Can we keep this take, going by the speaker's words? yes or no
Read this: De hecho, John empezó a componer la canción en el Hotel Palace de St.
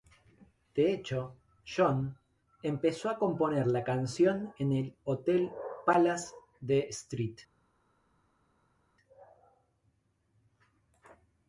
yes